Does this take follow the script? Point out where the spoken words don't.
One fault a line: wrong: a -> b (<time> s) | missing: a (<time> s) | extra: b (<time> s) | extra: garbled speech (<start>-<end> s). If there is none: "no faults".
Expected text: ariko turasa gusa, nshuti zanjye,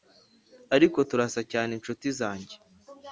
wrong: gusa -> cyane (1.5 s)